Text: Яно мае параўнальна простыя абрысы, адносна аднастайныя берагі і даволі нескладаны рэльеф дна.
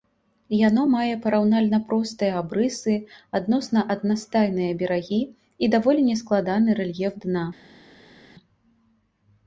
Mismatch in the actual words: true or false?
false